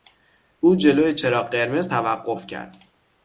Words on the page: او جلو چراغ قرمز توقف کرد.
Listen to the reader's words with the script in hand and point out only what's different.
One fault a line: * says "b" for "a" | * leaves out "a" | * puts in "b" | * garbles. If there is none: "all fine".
all fine